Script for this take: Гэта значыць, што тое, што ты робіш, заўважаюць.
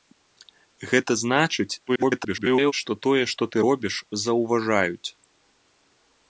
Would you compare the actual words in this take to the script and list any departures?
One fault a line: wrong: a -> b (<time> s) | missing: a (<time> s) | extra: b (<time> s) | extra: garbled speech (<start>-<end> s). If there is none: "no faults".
extra: garbled speech (1.9-2.7 s)